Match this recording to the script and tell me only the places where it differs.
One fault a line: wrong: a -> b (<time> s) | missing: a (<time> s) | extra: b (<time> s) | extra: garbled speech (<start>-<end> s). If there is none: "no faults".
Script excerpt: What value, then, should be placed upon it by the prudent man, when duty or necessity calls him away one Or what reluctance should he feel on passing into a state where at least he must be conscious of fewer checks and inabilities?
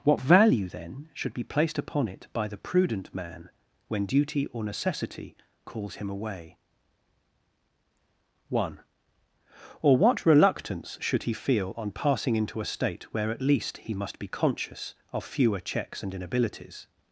no faults